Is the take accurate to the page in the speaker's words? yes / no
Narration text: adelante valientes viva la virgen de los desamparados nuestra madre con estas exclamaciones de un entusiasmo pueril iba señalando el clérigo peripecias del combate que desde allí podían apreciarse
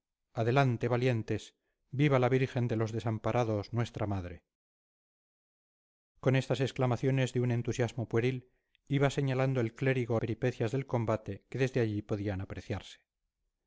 yes